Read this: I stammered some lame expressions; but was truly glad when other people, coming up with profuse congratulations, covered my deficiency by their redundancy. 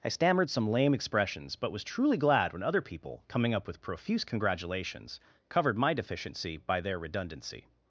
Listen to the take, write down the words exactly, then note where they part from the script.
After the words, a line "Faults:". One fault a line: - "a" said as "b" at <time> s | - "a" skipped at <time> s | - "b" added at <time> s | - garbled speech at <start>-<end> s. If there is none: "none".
I stammered some lame expressions; but was truly glad when other people, coming up with profuse congratulations, covered my deficiency by their redundancy.
Faults:
none